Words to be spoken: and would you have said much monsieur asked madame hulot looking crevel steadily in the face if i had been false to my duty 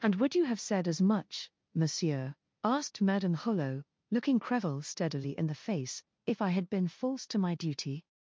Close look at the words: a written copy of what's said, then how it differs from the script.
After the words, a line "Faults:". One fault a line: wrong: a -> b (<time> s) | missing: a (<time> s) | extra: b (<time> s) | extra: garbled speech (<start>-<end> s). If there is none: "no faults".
and would you have said as much monsieur asked madame hulot looking crevel steadily in the face if i had been false to my duty
Faults:
extra: as (0.9 s)